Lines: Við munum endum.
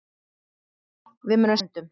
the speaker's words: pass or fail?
pass